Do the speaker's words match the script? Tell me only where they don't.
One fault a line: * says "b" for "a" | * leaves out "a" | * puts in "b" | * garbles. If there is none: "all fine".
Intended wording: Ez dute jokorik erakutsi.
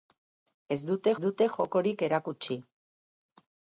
* puts in "dute"